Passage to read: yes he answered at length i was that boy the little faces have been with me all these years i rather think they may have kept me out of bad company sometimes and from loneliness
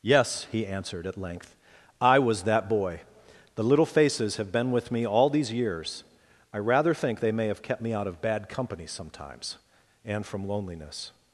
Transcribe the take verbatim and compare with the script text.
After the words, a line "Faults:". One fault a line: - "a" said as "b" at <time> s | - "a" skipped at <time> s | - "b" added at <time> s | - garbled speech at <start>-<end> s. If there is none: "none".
yes he answered at length i was that boy the little faces have been with me all these years i rather think they may have kept me out of bad company sometimes and from loneliness
Faults:
none